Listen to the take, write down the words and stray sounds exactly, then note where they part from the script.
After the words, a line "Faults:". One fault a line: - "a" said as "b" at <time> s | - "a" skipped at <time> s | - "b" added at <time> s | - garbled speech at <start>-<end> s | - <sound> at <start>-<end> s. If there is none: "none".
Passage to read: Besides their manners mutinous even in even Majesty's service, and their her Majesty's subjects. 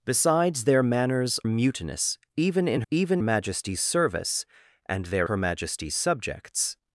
Besides their manners mutinous even in even Majesty's service, and their her Majesty's subjects.
Faults:
none